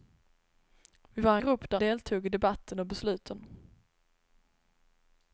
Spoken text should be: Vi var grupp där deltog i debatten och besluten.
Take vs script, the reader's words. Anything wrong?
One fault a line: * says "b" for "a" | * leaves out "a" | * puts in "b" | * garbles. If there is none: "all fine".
all fine